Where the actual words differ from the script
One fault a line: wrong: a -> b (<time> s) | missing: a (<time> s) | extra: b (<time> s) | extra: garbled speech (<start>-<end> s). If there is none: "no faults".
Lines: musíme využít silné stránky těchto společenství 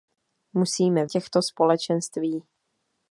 missing: využít silné stránky (1.1 s)